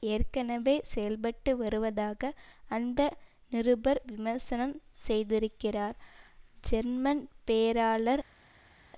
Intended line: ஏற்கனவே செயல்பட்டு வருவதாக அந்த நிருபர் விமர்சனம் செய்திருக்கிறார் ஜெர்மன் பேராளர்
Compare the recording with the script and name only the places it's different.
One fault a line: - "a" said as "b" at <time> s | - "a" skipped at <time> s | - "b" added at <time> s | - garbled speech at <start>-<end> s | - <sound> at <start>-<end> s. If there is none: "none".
none